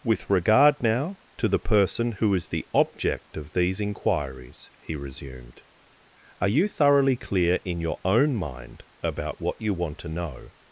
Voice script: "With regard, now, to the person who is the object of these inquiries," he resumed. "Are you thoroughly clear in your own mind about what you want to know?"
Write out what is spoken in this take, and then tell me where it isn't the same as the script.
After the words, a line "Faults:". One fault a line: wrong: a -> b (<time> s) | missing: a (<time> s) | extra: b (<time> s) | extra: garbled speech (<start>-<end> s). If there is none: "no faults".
"With regard, now, to the person who is the object of these inquiries," he resumed. "Are you thoroughly clear in your own mind about what you want to know?"
Faults:
no faults